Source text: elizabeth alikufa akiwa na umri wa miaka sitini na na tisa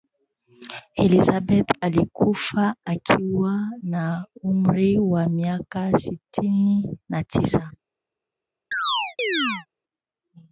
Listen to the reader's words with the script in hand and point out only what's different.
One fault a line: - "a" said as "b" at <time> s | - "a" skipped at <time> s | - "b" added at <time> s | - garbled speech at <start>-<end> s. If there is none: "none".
- "na" skipped at 7.2 s